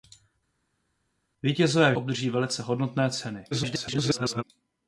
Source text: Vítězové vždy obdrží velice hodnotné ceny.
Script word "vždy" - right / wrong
wrong